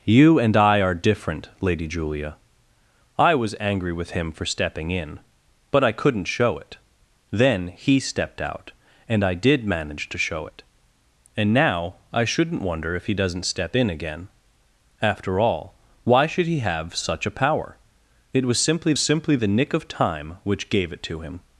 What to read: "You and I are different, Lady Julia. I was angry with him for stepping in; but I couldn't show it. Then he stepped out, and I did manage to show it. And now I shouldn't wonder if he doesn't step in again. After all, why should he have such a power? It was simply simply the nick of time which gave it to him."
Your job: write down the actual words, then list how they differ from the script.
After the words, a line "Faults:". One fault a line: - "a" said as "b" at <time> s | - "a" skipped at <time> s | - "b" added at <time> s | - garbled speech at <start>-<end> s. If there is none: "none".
"You and I are different, Lady Julia. I was angry with him for stepping in; but I couldn't show it. Then he stepped out, and I did manage to show it. And now I shouldn't wonder if he doesn't step in again. After all, why should he have such a power? It was simply simply the nick of time which gave it to him."
Faults:
none